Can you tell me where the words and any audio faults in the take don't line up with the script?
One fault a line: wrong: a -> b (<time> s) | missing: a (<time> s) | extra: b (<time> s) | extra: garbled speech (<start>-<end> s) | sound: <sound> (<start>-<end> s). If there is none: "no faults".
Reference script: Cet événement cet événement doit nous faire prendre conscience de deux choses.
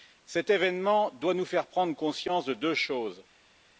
missing: cet événement (1.1 s)